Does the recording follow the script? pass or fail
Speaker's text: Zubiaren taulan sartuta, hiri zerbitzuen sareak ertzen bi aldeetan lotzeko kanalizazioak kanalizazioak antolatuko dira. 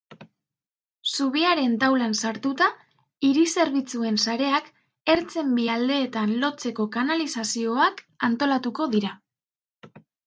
fail